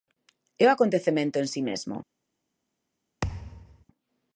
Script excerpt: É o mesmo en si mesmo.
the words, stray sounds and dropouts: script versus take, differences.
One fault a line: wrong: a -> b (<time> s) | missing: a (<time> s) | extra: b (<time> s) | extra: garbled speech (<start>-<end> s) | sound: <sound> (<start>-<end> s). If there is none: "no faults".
wrong: mesmo -> acontecemento (0.8 s)
sound: thud (3.2-3.8 s)